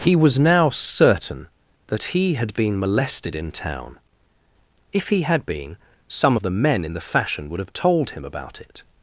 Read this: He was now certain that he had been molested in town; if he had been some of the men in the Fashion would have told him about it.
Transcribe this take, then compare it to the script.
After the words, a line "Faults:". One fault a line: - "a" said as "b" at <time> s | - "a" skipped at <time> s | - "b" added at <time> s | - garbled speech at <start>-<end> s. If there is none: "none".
He was now certain that he had been molested in town; if he had been some of the men in the Fashion would have told him about it.
Faults:
none